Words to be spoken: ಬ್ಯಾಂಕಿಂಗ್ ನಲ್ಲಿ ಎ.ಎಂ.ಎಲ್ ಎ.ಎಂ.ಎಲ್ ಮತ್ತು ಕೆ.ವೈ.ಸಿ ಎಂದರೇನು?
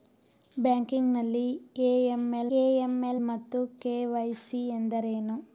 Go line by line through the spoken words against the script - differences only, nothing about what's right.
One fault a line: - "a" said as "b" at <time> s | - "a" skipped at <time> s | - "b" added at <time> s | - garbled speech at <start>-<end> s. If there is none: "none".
none